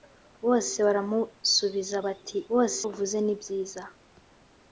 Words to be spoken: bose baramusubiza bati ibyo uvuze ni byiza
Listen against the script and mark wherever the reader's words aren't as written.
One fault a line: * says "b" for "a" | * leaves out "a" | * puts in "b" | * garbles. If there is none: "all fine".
* says "bose" for "ibyo"